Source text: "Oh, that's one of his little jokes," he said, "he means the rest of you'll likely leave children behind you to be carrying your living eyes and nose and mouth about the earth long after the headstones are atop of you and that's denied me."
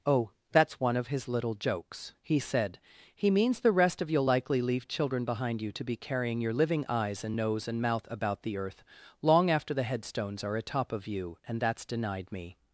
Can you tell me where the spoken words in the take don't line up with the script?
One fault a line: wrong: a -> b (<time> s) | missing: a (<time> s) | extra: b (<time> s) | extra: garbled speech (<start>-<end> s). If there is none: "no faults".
no faults